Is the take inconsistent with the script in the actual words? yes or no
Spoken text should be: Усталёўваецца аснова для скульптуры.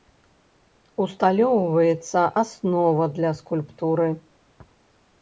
no